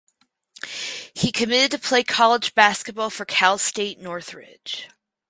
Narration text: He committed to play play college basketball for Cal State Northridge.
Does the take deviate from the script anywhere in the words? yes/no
yes